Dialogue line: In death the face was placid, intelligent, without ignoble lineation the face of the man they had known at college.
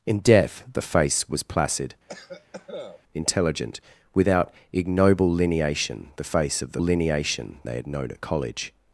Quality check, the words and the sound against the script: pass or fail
fail